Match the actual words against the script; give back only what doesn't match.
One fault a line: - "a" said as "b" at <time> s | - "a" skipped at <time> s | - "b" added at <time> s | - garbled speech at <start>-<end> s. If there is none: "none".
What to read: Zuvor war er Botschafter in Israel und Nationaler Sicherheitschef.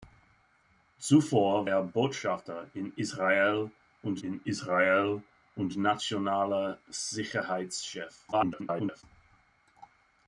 - "war" skipped at 1.7 s
- "in Israel und" added at 4.2 s
- garbled speech at 8.3-9.0 s